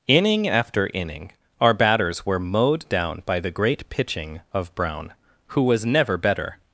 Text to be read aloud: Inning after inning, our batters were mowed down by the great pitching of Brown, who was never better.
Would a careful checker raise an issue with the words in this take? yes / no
no